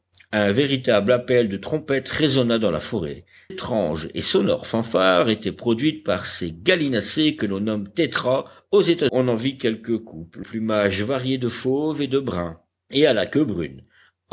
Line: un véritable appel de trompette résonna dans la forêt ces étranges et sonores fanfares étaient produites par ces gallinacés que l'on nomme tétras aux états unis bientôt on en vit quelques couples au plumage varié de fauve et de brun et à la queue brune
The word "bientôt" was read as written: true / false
false